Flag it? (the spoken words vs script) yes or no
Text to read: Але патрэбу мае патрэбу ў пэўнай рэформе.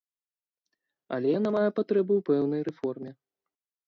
yes